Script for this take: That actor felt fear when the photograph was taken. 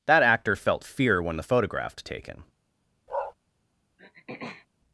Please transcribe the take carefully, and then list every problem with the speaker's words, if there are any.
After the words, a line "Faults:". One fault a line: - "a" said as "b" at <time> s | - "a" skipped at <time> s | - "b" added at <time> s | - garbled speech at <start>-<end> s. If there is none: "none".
That actor felt fear when the photograph taken.
Faults:
- "was" skipped at 2.0 s